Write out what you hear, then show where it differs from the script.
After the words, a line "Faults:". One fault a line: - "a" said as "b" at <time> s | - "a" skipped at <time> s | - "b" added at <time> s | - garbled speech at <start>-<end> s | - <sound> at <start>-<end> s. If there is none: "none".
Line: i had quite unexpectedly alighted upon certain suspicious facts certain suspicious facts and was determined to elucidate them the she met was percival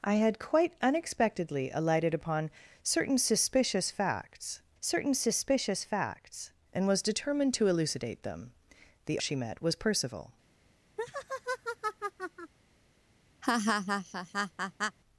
i had quite unexpectedly alighted upon certain suspicious facts certain suspicious facts and was determined to elucidate them the she met was percival
Faults:
- laugh at 11.0-12.5 s
- laugh at 13.4-15.0 s